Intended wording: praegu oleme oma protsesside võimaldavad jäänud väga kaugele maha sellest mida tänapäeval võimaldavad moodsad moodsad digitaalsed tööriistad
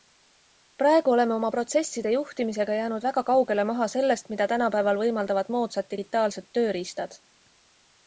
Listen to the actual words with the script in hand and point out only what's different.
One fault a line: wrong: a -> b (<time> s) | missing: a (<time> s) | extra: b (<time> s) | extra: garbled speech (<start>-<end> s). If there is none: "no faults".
wrong: võimaldavad -> juhtimisega (2.1 s)
missing: moodsad (5.9 s)